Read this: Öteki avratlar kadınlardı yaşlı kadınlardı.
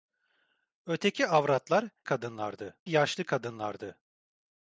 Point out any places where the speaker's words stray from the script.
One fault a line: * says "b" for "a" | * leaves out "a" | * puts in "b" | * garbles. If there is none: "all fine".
all fine